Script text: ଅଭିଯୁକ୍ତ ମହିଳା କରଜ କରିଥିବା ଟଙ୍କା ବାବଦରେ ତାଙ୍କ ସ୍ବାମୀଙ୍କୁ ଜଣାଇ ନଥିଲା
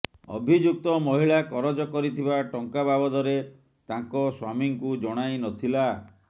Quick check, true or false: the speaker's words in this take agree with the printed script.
true